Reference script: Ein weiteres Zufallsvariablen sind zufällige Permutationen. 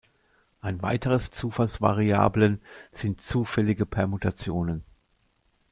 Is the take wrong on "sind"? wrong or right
right